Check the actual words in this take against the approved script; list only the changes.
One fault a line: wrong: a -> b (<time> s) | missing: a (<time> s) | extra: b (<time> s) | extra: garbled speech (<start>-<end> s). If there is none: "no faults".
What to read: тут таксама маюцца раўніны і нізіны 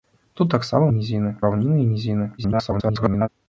wrong: маюцца -> нізіны (1.0 s)
extra: garbled speech (2.4-3.3 s)